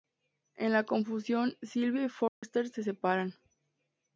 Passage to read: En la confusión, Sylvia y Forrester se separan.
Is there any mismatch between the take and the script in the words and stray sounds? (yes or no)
yes